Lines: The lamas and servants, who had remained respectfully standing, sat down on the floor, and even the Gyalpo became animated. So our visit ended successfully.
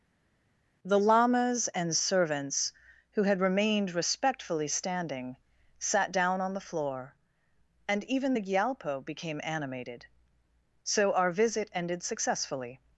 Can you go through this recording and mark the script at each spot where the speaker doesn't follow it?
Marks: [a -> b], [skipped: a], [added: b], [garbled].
The lamas and servants, who had remained respectfully standing, sat down on the floor, and even the Gyalpo became animated. So our visit ended successfully.